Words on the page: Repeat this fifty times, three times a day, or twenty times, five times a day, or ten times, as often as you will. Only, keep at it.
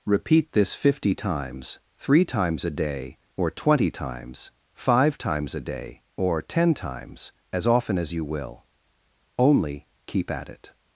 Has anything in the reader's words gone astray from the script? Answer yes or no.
no